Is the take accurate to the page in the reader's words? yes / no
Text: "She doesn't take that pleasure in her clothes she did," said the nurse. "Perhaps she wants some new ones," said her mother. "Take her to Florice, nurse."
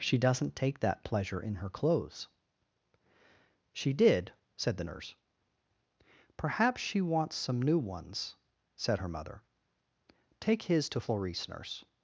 no